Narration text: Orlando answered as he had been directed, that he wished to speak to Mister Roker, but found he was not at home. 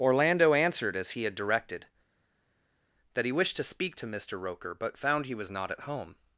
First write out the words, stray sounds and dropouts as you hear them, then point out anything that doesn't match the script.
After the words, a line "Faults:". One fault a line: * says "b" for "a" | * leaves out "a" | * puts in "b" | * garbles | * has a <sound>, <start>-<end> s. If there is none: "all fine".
Orlando answered as he had directed, that he wished to speak to Mister Roker, but found he was not at home.
Faults:
* leaves out "been"